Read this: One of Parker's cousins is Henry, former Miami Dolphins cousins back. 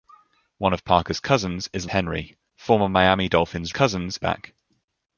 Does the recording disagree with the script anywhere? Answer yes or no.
no